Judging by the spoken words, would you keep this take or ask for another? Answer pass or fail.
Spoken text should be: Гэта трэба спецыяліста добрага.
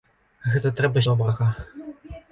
fail